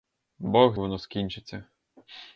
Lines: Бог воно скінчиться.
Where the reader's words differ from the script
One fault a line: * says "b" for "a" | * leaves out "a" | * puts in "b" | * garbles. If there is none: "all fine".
all fine